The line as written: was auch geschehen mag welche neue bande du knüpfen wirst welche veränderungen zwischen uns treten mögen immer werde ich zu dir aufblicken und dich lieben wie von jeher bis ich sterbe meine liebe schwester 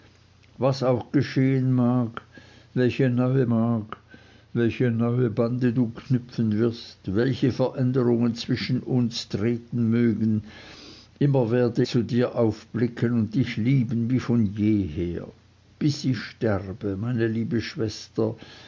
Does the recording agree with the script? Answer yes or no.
no